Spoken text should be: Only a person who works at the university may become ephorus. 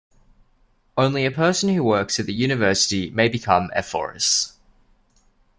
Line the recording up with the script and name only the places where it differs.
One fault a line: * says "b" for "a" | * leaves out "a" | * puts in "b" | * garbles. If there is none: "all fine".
all fine